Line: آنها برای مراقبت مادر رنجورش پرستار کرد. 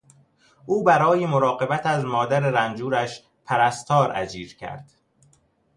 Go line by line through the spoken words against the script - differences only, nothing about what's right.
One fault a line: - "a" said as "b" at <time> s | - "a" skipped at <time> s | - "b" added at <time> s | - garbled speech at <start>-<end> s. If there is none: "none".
- "آنها" said as "او" at 0.7 s
- "از" added at 1.9 s
- "اجیر" added at 4.1 s